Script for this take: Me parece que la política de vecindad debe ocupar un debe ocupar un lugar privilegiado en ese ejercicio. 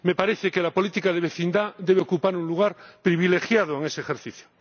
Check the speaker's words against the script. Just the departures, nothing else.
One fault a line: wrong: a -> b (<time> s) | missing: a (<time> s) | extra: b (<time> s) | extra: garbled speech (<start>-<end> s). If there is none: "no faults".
missing: debe ocupar un (2.5 s)